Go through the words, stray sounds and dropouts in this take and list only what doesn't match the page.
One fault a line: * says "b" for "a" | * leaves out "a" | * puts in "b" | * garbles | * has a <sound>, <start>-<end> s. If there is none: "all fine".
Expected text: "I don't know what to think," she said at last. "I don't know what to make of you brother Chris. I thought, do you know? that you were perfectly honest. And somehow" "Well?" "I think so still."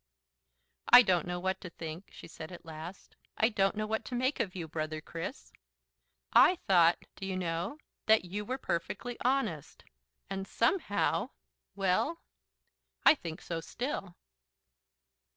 all fine